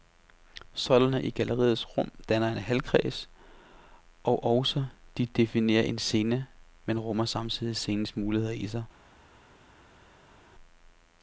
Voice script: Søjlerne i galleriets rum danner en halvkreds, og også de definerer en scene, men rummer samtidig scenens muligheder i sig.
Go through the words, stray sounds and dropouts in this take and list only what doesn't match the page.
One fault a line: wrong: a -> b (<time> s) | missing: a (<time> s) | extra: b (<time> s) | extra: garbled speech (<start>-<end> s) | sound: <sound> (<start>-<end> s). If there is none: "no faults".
no faults